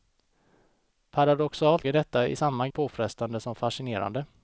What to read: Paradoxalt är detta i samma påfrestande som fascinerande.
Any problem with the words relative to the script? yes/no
no